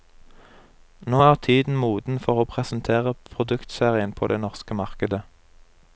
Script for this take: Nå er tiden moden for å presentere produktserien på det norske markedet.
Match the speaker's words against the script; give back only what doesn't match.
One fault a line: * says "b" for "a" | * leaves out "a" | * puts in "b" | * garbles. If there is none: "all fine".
all fine